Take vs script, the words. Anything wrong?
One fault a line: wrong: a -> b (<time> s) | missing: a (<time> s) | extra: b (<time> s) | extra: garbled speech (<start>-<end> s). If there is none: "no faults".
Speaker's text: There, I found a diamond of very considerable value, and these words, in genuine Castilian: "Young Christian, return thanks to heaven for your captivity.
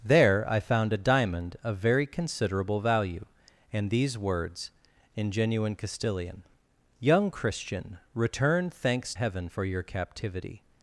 missing: to (9.1 s)